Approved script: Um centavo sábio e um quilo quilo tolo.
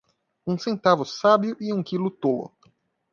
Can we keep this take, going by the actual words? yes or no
no